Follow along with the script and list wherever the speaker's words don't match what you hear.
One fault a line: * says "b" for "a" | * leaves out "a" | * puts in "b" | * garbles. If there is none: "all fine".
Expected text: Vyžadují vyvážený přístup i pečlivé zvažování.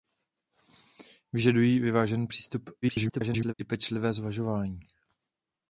* garbles